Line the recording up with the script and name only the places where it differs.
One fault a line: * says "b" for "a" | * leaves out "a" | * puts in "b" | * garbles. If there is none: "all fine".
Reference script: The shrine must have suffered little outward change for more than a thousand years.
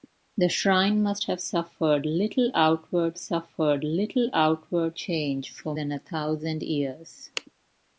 * puts in "suffered little outward"
* leaves out "more"